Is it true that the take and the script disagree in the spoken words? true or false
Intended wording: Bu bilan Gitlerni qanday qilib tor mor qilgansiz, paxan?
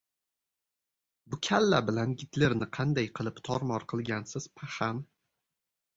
true